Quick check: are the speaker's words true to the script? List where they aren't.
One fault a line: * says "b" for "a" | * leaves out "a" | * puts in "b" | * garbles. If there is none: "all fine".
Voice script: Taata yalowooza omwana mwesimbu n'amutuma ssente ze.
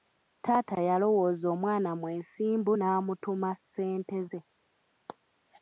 all fine